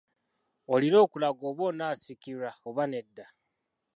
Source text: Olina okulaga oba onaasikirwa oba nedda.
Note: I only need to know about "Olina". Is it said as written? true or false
true